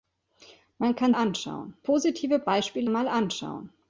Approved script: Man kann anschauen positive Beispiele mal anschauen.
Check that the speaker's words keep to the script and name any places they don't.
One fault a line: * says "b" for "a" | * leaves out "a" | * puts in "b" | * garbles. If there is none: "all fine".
all fine